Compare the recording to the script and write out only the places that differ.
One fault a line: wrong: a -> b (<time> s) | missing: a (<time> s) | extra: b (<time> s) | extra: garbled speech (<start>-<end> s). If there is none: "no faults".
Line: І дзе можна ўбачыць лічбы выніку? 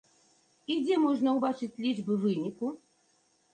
no faults